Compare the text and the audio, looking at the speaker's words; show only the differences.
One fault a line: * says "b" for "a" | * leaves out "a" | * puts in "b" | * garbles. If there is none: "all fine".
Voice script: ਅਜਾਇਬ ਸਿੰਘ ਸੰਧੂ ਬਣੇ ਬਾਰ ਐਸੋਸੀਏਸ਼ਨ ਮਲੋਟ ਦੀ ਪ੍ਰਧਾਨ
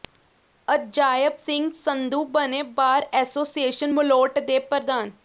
* says "ਦੇ" for "ਦੀ"